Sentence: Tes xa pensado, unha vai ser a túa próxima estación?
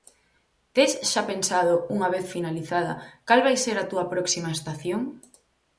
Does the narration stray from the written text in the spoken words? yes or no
yes